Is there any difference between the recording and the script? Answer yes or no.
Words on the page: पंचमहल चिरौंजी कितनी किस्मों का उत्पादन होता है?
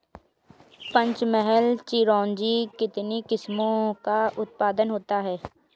no